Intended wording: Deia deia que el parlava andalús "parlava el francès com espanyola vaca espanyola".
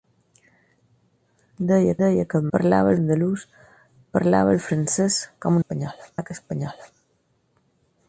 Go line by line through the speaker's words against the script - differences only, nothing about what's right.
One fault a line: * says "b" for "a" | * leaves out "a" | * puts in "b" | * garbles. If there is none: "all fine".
all fine